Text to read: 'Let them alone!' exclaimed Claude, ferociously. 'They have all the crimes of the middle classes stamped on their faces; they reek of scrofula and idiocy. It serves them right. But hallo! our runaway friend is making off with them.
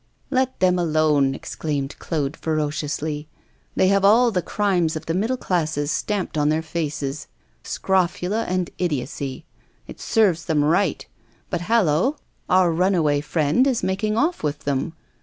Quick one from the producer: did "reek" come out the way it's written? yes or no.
no